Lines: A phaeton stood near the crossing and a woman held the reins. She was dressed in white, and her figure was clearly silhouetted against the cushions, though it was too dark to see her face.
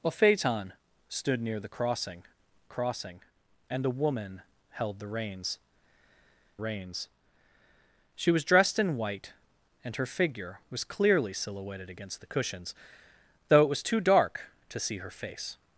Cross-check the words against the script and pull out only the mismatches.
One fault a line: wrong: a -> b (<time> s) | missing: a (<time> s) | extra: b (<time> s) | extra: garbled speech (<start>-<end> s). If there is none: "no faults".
extra: crossing (2.7 s)
extra: reins (6.6 s)